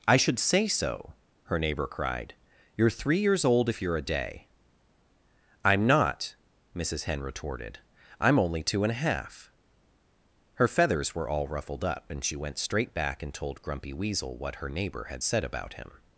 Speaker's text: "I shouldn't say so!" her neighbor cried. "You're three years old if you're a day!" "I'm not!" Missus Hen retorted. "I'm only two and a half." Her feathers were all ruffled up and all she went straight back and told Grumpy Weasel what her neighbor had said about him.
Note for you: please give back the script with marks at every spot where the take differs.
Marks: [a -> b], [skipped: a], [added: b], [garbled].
"I [shouldn't -> should] say so!" her neighbor cried. "You're three years old if you're a day!" "I'm not!" Missus Hen retorted. "I'm only two and a half." Her feathers were all ruffled up and [skipped: all] she went straight back and told Grumpy Weasel what her neighbor had said about him.